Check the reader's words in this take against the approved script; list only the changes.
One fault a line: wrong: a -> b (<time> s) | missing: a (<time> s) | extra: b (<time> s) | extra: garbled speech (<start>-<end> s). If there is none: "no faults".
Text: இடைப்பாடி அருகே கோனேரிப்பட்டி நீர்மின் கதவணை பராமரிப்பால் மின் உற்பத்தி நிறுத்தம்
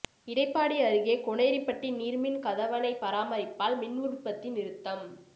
no faults